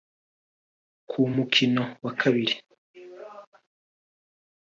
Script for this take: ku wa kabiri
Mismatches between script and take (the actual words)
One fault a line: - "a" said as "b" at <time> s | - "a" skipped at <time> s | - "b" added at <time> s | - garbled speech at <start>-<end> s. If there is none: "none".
- "mukino" added at 1.3 s